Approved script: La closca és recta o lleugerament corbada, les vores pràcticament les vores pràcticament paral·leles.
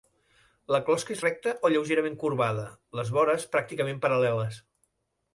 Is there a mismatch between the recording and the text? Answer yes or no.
yes